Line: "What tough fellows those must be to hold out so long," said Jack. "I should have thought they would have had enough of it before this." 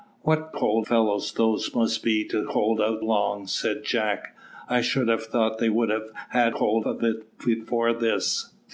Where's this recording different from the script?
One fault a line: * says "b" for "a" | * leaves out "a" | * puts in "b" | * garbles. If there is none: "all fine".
* says "hold" for "tough"
* leaves out "so"
* says "hold" for "enough"